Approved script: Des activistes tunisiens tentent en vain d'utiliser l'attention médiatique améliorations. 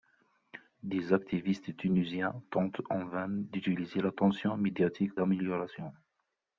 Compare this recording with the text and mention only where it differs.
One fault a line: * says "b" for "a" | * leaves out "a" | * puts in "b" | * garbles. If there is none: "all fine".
all fine